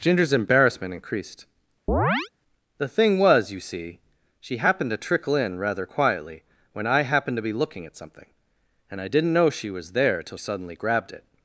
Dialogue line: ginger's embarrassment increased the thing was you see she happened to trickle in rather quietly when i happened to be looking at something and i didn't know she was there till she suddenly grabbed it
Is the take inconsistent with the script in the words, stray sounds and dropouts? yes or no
yes